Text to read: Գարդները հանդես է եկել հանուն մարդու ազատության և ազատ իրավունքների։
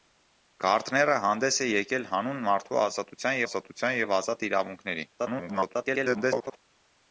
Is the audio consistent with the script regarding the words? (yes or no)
no